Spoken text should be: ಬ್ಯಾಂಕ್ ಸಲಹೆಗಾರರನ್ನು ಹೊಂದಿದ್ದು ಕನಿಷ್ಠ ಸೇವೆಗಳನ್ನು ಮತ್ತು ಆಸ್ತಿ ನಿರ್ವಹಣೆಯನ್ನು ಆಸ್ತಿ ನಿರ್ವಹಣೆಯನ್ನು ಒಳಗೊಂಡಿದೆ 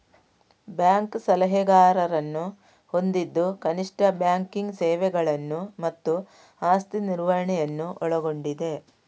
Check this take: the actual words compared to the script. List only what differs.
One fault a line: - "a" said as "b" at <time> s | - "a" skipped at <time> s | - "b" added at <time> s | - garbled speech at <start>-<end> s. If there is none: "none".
- "ಬ್ಯಾಂಕಿಂಗ್" added at 4.2 s
- "ಆಸ್ತಿ ನಿರ್ವಹಣೆಯನ್ನು" skipped at 7.9 s